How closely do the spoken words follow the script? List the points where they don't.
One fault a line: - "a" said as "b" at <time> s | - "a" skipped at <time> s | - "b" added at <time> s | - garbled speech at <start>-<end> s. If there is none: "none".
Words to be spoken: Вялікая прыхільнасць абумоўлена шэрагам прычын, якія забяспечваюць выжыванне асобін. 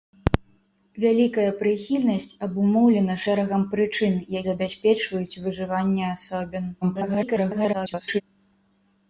- "якія" skipped at 4.2 s
- garbled speech at 6.8-8.2 s